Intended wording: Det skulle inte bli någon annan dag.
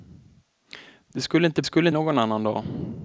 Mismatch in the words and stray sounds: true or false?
true